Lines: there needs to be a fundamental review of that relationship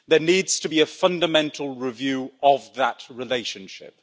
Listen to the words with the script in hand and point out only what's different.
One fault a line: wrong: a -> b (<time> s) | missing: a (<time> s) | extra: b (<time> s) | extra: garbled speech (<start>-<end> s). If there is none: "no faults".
no faults